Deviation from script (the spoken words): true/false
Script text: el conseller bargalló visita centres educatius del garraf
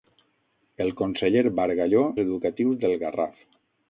true